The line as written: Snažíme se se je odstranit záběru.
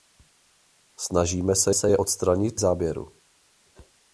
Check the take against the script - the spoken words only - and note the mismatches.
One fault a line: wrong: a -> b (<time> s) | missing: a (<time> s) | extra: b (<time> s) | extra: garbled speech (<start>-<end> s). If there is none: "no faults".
no faults